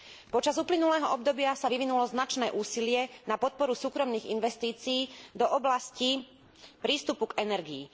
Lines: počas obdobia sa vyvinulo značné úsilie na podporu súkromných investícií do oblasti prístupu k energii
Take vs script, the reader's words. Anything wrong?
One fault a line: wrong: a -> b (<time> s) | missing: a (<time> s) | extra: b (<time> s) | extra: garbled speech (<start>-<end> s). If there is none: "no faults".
extra: uplynulého (0.6 s)